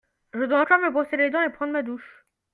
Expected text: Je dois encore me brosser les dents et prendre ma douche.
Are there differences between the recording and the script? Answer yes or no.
no